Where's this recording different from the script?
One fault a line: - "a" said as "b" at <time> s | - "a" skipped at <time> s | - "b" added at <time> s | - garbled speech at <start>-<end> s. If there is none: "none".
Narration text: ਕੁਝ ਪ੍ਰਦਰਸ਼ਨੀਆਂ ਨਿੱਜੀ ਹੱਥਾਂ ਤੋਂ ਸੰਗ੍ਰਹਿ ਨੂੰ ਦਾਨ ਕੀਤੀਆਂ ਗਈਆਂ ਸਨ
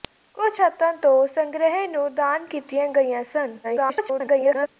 - "ਪ੍ਰਦਰਸ਼ਨੀਆਂ ਨਿੱਜੀ" skipped at 0.6 s
- garbled speech at 3.6-4.7 s